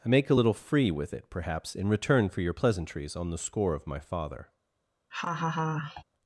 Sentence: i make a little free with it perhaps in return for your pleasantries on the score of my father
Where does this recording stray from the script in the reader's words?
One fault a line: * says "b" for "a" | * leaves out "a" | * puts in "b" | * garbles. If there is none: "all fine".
all fine